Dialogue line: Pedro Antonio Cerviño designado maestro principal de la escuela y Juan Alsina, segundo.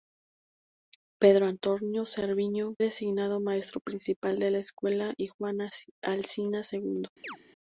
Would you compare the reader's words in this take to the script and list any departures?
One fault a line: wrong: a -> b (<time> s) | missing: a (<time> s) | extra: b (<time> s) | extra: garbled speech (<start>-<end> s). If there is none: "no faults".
no faults